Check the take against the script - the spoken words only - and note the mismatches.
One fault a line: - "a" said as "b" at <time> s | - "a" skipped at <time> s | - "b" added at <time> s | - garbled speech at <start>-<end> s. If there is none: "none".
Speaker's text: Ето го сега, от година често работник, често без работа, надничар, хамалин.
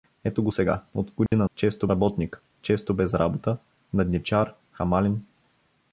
none